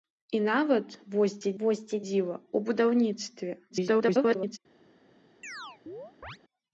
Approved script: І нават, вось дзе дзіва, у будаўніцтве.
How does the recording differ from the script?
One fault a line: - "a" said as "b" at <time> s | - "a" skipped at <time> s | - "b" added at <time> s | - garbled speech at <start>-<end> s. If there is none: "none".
- "вось дзе" added at 1.6 s
- garbled speech at 3.7-4.6 s